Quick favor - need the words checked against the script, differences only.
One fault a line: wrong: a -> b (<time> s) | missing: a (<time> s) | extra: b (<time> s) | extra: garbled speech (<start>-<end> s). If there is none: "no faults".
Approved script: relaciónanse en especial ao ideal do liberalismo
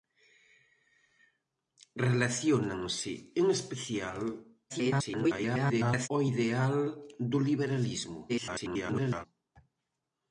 extra: garbled speech (4.7-6.1 s)
extra: garbled speech (8.3-9.3 s)